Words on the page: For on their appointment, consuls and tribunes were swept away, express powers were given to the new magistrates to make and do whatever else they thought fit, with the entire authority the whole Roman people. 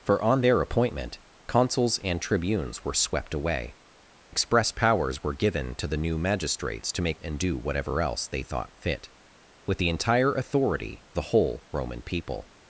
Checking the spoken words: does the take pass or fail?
pass